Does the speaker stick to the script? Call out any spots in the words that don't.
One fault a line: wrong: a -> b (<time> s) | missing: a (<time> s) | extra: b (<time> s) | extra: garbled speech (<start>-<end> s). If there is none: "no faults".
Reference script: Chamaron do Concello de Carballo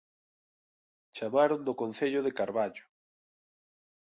no faults